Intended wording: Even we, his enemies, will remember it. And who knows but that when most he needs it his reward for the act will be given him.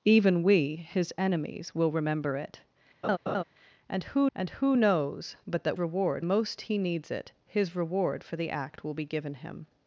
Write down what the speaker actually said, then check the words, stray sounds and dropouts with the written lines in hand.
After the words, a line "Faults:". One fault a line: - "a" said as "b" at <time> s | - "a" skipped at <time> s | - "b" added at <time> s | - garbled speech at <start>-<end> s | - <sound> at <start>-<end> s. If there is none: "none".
Even we, his enemies, will remember it. And who and who knows but that reward most he needs it his reward for the act will be given him.
Faults:
- laugh at 3.0-3.4 s
- "and who" added at 4.3 s
- "when" said as "reward" at 5.8 s